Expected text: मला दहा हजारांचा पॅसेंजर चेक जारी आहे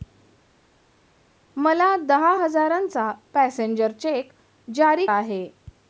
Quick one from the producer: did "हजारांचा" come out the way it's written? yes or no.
yes